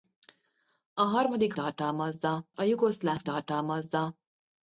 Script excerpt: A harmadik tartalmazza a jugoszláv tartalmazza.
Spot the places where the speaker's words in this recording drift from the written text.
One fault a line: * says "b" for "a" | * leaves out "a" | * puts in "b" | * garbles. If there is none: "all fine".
all fine